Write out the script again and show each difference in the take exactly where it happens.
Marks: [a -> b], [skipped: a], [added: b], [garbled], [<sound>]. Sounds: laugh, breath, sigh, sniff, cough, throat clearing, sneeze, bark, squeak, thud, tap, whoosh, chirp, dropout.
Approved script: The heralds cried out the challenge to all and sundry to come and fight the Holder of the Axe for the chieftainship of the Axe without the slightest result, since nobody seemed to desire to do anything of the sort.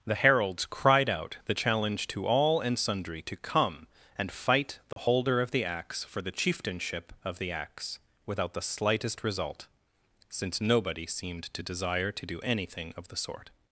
The heralds cried out the challenge to all and sundry to come and fight the [dropout] Holder of the Axe for the chieftainship of the Axe without the slightest result, since nobody seemed to desire to do anything of the sort.